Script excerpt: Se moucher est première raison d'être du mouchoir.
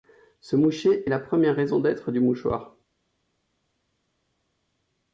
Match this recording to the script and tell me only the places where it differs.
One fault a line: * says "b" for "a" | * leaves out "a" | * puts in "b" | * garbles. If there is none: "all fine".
* puts in "la"